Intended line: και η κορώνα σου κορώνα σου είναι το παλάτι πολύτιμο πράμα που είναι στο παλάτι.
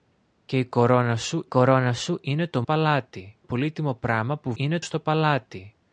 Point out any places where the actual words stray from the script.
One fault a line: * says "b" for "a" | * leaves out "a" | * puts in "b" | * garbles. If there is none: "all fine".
all fine